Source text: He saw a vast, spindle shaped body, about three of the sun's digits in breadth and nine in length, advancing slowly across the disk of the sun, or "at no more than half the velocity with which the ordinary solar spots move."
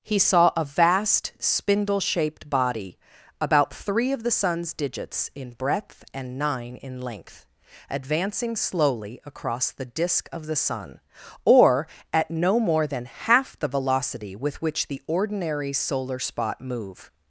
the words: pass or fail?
fail